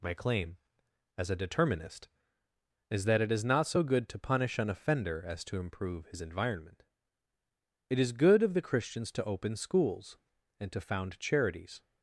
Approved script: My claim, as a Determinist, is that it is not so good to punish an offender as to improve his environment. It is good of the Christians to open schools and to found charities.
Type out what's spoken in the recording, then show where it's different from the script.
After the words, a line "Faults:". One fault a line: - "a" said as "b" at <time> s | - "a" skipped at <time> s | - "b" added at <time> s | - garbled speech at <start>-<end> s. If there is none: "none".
My claim, as a Determinist, is that it is not so good to punish an offender as to improve his environment. It is good of the Christians to open schools and to found charities.
Faults:
none